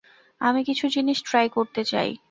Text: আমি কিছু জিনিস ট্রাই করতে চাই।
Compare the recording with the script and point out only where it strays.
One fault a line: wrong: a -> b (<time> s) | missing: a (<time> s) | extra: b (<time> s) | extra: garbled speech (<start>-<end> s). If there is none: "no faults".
no faults